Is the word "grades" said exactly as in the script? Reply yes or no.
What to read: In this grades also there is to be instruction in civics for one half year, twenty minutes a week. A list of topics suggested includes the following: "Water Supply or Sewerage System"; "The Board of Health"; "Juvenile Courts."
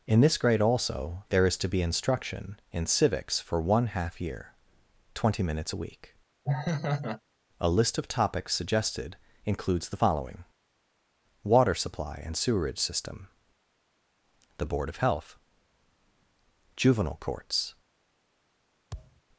no